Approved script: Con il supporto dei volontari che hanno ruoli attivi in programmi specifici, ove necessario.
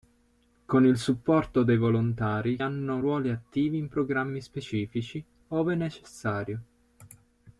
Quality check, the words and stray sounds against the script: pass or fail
fail